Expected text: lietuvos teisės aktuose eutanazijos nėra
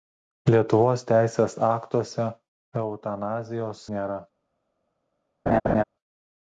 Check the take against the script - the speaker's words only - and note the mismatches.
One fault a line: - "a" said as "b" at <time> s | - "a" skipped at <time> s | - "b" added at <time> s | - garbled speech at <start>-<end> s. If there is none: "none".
none